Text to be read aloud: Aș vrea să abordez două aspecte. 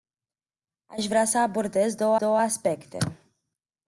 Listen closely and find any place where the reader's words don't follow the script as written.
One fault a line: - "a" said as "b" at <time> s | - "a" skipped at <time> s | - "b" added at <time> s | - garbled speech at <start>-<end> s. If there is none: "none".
- "două" added at 2.1 s